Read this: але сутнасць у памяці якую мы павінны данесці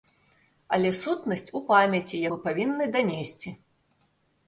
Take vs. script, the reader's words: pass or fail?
fail